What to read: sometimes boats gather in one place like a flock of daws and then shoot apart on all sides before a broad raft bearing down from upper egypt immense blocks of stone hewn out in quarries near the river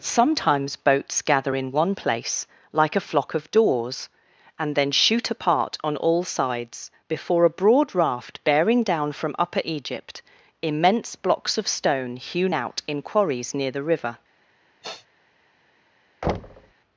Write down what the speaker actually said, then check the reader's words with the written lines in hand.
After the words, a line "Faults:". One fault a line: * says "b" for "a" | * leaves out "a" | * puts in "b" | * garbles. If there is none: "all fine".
sometimes boats gather in one place like a flock of daws and then shoot apart on all sides before a broad raft bearing down from upper egypt immense blocks of stone hewn out in quarries near the river
Faults:
all fine